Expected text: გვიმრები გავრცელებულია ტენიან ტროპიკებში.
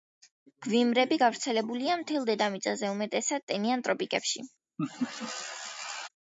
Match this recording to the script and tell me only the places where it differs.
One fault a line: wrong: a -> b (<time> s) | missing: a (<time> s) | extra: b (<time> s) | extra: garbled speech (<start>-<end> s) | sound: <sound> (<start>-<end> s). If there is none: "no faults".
extra: მთელ დედამიწაზე უმეტესად (2.0 s)
sound: laugh (4.8-6.1 s)